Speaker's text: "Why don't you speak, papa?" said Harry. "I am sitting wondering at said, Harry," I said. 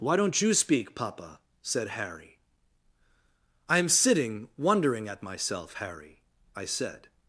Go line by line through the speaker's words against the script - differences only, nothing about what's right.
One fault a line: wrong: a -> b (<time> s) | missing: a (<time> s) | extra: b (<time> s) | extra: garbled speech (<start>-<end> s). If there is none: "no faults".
wrong: said -> myself (5.2 s)